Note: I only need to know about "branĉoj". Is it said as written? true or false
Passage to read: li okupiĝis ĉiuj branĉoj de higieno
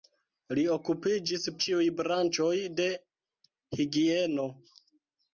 true